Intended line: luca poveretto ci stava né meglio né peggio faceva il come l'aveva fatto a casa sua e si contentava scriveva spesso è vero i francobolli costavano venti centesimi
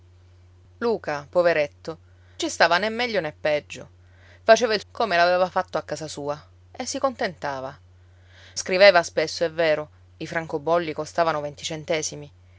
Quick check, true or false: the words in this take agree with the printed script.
true